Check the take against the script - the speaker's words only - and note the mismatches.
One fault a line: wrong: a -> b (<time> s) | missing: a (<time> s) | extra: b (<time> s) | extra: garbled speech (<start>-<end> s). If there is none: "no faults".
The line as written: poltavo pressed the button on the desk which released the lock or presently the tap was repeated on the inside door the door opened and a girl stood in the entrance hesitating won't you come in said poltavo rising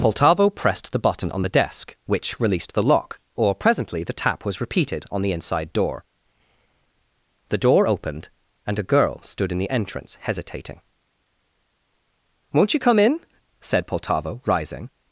no faults